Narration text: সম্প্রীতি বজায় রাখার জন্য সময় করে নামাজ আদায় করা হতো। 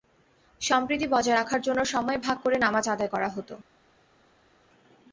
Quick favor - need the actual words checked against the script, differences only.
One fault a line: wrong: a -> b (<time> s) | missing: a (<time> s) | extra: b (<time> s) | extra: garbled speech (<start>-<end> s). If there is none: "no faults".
extra: ভাগ (2.2 s)